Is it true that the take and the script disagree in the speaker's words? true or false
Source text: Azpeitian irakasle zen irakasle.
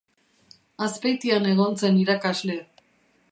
true